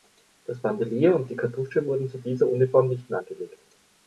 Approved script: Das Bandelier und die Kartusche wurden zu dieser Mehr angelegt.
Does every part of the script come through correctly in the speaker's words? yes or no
no